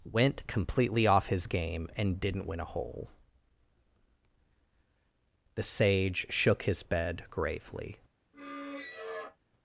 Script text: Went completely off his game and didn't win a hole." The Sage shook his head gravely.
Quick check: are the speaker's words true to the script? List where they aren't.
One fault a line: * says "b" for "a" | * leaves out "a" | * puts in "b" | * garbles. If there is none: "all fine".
* says "bed" for "head"